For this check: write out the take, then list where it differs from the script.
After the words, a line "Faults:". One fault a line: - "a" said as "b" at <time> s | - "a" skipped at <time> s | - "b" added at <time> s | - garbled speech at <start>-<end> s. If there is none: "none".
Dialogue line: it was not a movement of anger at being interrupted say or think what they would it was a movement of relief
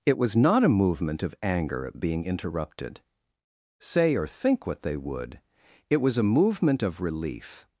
it was not a movement of anger at being interrupted say or think what they would it was a movement of relief
Faults:
none